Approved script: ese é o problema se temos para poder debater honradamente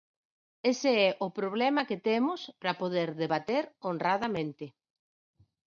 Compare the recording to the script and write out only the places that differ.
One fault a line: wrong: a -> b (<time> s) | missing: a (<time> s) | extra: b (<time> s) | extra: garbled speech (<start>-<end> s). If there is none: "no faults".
wrong: se -> que (1.9 s)